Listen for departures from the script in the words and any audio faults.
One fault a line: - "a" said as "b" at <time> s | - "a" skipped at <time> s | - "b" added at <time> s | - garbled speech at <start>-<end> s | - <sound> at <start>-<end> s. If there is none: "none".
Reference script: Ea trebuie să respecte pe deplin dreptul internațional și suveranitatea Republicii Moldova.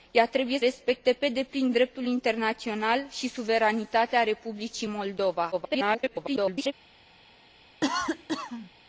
- "să" skipped at 0.6 s
- garbled speech at 5.5-6.7 s
- cough at 7.8-8.7 s